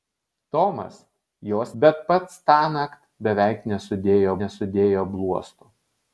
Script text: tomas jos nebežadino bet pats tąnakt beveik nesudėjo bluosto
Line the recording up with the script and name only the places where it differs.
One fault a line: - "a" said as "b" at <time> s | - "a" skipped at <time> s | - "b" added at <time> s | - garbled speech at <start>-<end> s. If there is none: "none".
- "nebežadino" skipped at 1.7 s
- "nesudėjo" added at 4.4 s